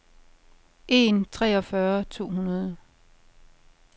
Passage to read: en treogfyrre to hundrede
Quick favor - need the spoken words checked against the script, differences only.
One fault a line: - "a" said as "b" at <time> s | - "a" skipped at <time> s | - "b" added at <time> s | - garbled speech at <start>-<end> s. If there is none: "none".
none